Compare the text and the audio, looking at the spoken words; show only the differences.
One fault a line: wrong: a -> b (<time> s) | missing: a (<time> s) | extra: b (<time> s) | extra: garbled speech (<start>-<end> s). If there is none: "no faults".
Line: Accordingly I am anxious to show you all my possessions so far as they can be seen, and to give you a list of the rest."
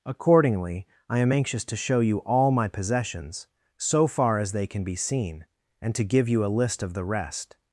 no faults